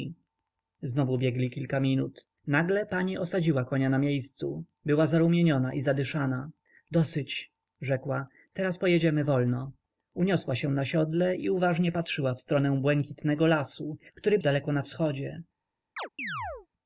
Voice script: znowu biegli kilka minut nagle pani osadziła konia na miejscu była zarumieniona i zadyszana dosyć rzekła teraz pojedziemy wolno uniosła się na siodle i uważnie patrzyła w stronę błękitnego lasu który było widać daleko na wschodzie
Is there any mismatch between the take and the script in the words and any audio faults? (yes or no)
yes